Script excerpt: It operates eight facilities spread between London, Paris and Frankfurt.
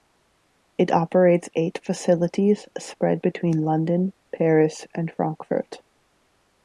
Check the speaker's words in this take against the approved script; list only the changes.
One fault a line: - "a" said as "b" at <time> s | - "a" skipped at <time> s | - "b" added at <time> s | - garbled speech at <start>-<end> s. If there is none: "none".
none